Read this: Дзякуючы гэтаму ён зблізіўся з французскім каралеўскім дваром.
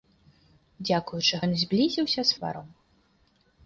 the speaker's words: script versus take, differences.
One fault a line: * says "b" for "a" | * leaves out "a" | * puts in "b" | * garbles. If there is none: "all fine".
* leaves out "гэтаму"
* leaves out "французскім каралеўскім"